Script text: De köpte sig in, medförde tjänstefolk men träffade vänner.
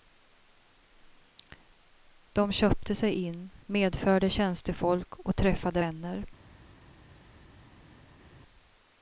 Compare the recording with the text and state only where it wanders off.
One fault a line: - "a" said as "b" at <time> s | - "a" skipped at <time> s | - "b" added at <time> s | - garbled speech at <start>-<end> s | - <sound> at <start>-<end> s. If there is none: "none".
- "men" said as "och" at 5.2 s